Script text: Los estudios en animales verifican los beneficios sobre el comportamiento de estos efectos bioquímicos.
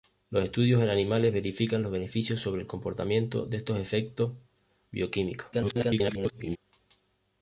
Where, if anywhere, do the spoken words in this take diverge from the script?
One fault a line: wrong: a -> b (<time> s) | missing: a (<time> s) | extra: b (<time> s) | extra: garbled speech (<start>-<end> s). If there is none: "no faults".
extra: garbled speech (5.5-6.6 s)